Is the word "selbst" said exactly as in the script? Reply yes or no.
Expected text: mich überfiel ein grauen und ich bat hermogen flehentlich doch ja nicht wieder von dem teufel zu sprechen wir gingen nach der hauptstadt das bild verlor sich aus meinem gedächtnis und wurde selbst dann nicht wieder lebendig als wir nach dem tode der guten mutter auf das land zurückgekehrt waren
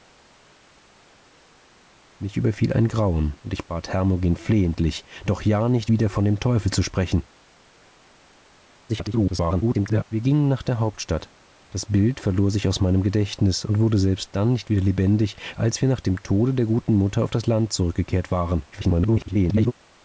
yes